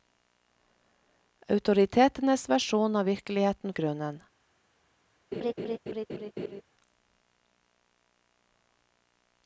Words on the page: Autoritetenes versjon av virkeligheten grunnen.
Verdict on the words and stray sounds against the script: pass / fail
fail